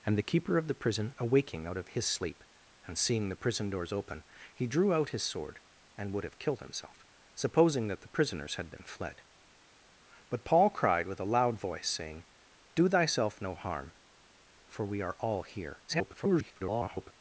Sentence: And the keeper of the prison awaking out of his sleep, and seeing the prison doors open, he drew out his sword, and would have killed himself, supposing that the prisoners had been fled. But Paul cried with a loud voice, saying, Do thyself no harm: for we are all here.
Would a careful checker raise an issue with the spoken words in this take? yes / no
yes